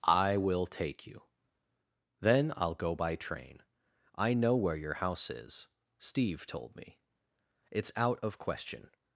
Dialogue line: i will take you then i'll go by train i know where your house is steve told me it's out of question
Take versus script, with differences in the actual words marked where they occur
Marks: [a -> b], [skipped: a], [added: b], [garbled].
i will take you then i'll go by train i know where your house is steve told me it's out of question